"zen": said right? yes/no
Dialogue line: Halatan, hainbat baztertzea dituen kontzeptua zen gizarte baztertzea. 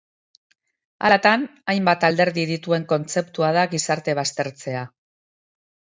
no